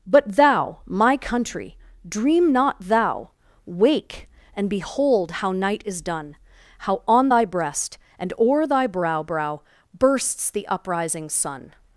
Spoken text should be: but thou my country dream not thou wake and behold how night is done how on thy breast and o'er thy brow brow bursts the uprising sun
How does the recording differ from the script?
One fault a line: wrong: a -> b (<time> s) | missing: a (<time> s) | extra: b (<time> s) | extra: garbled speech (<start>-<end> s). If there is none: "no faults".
no faults